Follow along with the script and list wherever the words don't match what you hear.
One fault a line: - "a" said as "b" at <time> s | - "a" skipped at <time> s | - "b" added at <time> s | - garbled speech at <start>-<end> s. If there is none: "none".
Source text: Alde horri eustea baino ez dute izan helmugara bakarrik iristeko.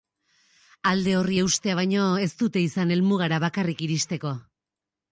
none